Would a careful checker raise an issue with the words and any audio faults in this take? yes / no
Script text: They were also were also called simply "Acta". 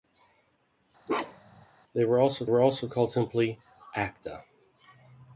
yes